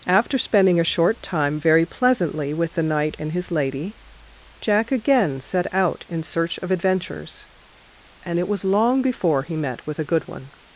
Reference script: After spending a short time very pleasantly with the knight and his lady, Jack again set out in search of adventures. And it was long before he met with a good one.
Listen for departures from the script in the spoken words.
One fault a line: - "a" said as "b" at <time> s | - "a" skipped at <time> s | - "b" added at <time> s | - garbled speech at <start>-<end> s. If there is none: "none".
none